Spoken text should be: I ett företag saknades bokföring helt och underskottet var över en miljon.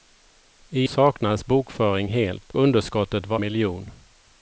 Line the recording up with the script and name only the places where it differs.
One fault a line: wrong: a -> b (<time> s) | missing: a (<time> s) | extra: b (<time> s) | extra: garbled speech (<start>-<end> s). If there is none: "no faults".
missing: ett företag (0.9 s)
missing: och (2.5 s)
missing: över en (3.4 s)